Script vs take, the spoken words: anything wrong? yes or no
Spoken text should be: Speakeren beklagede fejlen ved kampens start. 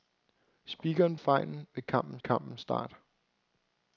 yes